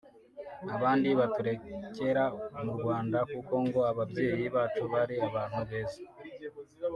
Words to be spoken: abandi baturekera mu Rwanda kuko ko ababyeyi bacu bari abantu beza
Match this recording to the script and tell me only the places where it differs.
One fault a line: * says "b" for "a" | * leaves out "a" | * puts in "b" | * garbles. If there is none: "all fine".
* says "ngo" for "ko"